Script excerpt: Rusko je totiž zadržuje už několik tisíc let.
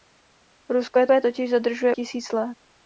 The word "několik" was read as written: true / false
false